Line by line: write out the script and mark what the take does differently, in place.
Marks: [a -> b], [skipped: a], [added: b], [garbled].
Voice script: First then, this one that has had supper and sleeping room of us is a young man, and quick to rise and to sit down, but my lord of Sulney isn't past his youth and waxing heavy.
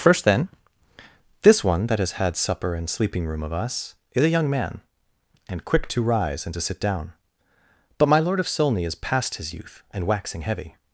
First then, this one that has had supper and sleeping room of us is a young man, and quick to rise and to sit down, but my lord of Sulney [isn't -> is] past his youth and waxing heavy.